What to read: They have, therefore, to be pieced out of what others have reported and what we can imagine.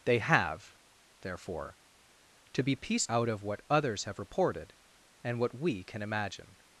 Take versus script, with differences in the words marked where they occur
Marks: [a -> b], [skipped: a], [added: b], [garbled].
They have, therefore, to be pieced out of what others have reported and what we can imagine.